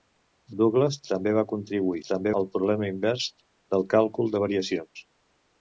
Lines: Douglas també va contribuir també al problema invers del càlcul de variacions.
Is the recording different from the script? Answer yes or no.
no